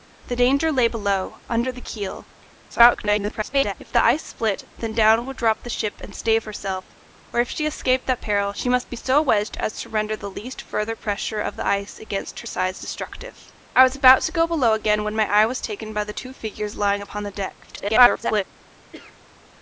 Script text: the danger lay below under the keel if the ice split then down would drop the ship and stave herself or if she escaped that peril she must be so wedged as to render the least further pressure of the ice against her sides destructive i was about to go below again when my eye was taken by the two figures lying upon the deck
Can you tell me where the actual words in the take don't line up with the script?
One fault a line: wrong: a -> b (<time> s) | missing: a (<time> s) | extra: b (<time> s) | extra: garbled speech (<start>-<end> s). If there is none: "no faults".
extra: garbled speech (2.7-3.7 s)
extra: garbled speech (17.6-18.4 s)